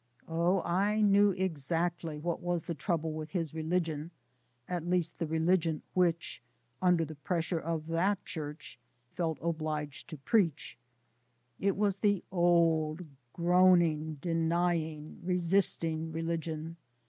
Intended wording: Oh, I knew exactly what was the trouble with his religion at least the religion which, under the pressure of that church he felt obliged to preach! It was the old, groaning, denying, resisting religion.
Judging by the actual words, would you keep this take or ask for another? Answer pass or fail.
fail